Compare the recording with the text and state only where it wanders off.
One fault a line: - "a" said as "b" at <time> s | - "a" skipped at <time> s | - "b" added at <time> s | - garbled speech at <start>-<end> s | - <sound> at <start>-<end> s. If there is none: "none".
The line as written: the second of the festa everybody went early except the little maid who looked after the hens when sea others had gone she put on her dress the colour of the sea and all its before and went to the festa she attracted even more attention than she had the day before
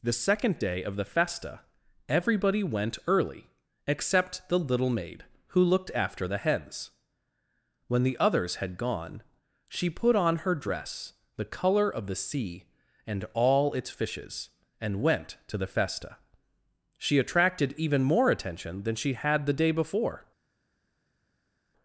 - "day" added at 0.6 s
- "sea" said as "the" at 8.0 s
- "before" said as "fishes" at 13.9 s